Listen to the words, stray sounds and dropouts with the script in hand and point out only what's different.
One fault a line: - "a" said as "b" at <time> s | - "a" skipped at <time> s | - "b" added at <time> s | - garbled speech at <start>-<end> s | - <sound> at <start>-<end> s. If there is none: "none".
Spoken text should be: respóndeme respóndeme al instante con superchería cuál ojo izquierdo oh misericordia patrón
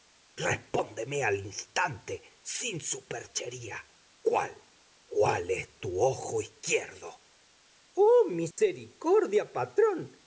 - "respóndeme" skipped at 1.2 s
- "con" said as "sin" at 2.4 s
- "cuál es tu" added at 5.1 s
- dropout at 8.5-8.6 s